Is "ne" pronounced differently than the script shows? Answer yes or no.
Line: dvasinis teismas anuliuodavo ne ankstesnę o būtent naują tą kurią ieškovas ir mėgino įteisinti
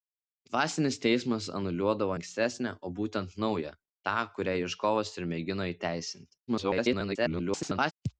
yes